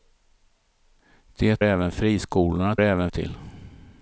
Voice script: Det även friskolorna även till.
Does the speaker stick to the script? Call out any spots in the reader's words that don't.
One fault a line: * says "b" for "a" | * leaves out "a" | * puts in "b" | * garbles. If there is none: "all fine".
all fine